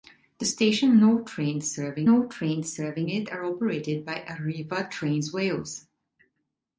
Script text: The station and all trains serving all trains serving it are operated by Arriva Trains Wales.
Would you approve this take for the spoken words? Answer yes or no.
yes